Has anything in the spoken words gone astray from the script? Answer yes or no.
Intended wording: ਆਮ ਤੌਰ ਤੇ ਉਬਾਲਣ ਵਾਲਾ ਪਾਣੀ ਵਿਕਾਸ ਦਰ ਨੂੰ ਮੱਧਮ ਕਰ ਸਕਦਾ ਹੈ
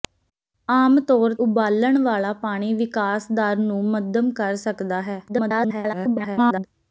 yes